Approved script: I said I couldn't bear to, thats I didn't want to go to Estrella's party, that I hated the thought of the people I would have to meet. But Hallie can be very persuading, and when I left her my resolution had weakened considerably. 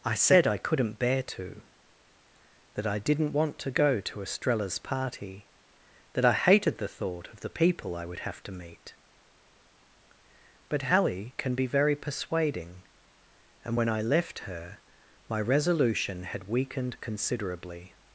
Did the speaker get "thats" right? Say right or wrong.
wrong